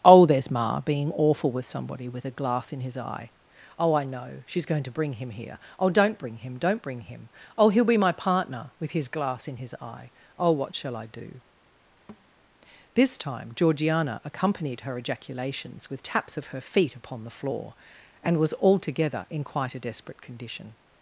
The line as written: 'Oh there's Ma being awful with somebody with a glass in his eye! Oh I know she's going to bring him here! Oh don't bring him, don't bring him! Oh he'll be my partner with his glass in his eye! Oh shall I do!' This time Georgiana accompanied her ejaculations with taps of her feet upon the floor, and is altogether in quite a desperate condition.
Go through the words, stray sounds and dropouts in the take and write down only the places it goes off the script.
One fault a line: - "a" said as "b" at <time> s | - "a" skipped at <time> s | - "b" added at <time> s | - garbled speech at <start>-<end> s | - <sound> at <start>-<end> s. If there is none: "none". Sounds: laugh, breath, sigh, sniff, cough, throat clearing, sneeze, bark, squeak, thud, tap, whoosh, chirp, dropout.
- "what" added at 10.5 s
- thud at 12.1-12.3 s
- "is" said as "was" at 18.4 s